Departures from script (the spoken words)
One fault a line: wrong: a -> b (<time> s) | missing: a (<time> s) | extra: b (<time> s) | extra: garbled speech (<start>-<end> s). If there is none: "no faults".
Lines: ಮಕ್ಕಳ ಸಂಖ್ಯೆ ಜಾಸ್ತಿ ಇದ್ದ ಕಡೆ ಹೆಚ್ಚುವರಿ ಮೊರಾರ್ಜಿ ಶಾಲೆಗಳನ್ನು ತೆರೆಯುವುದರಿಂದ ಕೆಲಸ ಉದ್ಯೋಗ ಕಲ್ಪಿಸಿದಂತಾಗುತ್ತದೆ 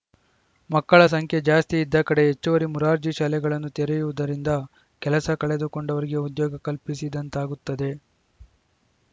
extra: ಕಳೆದುಕೊಂಡವರಿಗೆ (5.4 s)